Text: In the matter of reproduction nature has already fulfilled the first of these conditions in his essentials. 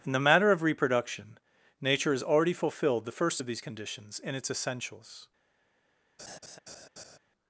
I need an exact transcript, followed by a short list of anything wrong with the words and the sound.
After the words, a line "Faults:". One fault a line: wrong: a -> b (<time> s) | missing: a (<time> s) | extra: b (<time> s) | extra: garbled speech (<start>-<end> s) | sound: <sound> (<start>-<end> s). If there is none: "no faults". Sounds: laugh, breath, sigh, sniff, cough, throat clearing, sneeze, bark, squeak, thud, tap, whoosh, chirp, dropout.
In the matter of reproduction nature has already fulfilled the first of these conditions in its essentials.
Faults:
wrong: his -> its (4.3 s)
sound: laugh (6.2-7.2 s)